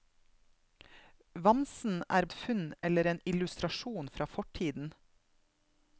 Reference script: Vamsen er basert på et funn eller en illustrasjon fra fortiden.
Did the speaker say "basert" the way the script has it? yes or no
no